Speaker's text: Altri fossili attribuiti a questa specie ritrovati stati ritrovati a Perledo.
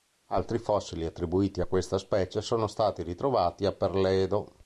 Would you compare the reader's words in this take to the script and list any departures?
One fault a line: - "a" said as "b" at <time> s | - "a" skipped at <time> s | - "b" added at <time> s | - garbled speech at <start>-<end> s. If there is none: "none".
- "ritrovati" said as "sono" at 2.4 s